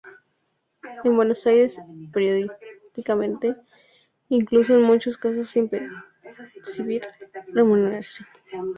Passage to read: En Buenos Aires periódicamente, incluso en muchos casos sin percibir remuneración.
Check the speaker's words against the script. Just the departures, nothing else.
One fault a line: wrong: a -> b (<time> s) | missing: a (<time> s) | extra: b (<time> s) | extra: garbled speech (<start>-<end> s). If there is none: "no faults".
no faults